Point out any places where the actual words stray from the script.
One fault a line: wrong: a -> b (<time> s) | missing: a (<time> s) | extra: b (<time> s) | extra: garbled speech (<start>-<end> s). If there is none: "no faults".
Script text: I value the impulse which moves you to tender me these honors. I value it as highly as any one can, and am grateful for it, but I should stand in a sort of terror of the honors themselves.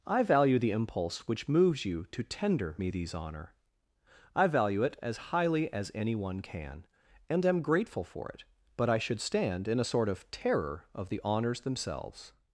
wrong: honors -> honor (3.1 s)